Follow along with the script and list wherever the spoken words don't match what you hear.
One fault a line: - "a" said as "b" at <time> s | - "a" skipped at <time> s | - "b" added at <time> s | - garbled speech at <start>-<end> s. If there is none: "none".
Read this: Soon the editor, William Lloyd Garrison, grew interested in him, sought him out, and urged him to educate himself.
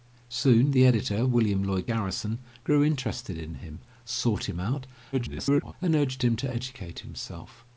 - garbled speech at 5.1-5.7 s